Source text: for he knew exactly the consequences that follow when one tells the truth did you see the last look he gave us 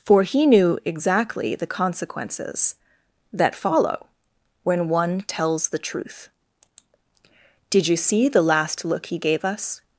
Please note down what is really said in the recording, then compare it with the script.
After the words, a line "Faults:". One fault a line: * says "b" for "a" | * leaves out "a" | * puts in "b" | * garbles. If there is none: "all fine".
for he knew exactly the consequences that follow when one tells the truth did you see the last look he gave us
Faults:
all fine